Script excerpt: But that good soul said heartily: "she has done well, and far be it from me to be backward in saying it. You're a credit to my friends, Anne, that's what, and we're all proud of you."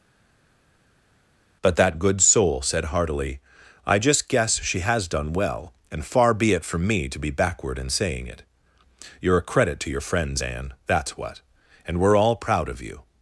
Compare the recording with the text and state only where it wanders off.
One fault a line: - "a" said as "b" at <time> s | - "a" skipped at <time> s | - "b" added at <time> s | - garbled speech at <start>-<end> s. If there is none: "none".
- "I just guess" added at 3.9 s
- "my" said as "your" at 9.9 s